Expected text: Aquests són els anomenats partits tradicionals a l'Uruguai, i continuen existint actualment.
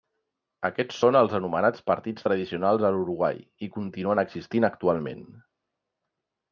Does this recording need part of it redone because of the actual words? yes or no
no